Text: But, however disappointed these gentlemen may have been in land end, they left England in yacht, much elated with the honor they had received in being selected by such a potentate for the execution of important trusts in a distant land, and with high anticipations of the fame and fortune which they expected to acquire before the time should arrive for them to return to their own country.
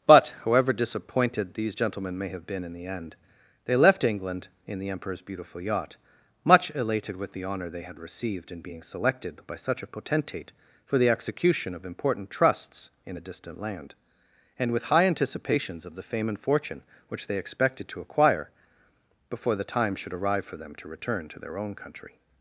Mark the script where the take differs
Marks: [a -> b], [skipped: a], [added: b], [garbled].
But, however disappointed these gentlemen may have been in [land -> the] end, they left England in [added: the emperor's beautiful] yacht, much elated with the honor they had received in being selected by such a potentate for the execution of important trusts in a distant land, and with high anticipations of the fame and fortune which they expected to acquire before the time should arrive for them to return to their own country.